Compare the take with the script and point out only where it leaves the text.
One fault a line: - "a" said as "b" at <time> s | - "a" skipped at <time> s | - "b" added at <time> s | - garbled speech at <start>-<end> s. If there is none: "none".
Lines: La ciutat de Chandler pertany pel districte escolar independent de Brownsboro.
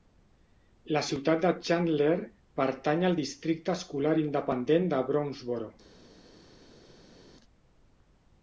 - "pel" said as "al" at 3.1 s